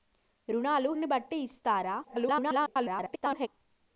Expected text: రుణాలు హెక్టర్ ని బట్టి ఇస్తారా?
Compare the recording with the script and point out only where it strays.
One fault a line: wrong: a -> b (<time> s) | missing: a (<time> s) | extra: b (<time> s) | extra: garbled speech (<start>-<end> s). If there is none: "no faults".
missing: హెక్టర్ (0.9 s)
extra: garbled speech (2.0-3.5 s)